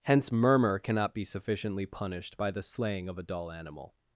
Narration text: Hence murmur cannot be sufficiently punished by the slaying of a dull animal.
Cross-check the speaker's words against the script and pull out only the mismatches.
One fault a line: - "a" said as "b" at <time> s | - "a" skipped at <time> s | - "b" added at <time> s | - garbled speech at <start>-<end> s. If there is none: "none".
none